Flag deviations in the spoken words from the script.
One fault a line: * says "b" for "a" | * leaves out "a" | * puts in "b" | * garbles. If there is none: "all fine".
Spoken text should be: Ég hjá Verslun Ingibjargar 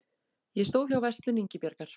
* puts in "stóð"